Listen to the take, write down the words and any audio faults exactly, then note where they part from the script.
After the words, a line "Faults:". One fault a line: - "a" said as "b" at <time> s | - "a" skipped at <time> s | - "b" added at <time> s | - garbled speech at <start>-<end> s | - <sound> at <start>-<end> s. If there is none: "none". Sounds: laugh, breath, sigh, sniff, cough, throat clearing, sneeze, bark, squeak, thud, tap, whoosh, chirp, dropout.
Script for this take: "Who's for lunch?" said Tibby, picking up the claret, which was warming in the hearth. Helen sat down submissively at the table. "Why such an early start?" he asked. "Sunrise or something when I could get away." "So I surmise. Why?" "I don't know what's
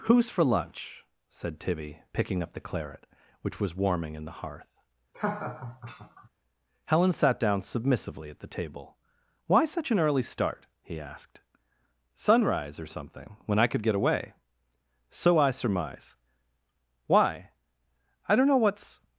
"Who's for lunch?" said Tibby, picking up the claret, which was warming in the hearth. Helen sat down submissively at the table. "Why such an early start?" he asked. "Sunrise or something when I could get away." "So I surmise. Why?" "I don't know what's
Faults:
- laugh at 5.1-6.3 s